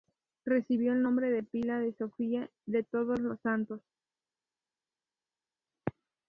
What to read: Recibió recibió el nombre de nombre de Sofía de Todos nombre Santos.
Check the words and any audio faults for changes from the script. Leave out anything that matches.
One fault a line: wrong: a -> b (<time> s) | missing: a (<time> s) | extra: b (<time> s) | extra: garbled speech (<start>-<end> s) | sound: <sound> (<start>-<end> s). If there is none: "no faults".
missing: recibió (0.9 s)
wrong: nombre -> pila (1.4 s)
wrong: nombre -> los (3.2 s)